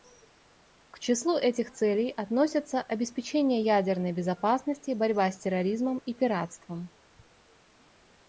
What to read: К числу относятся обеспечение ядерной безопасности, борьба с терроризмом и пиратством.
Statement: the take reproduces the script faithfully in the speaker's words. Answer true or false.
false